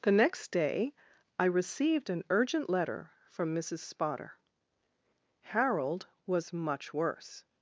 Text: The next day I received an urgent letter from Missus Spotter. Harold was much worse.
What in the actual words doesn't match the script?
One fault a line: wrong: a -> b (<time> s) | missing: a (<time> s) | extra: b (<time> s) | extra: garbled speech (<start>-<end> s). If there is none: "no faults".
no faults